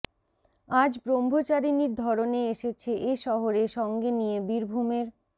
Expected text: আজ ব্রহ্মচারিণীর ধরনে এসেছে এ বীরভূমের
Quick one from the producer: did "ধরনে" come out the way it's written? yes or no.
yes